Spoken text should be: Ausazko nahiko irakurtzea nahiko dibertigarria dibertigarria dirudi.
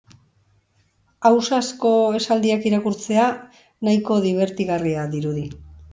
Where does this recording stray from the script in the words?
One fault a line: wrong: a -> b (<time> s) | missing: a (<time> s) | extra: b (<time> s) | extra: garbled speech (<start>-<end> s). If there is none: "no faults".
wrong: nahiko -> esaldiak (2.2 s)
missing: dibertigarria (5.0 s)